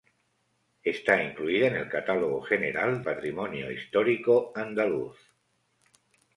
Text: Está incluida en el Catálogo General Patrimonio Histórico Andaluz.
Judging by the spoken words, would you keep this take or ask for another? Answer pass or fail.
pass